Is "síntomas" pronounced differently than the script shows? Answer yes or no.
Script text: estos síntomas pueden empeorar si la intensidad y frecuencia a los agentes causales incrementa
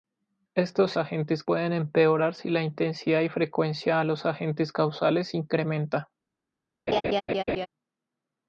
yes